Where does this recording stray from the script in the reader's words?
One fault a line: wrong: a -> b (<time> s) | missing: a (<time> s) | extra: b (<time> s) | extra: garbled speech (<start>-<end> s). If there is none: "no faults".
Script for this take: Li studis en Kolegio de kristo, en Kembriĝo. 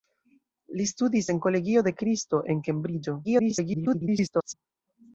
extra: garbled speech (3.2-4.5 s)